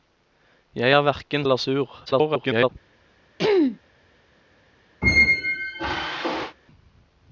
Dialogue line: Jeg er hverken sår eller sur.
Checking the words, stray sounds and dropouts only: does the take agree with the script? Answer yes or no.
no